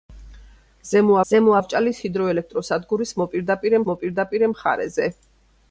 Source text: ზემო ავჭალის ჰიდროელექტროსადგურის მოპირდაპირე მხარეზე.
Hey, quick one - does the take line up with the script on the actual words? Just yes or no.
no